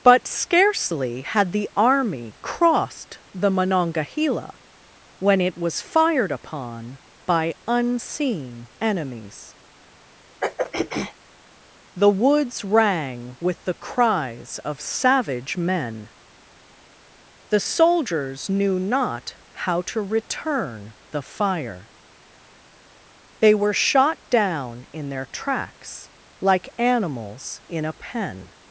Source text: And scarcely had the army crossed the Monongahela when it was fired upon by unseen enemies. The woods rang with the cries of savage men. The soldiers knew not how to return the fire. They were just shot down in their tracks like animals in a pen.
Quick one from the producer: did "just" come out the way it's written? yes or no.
no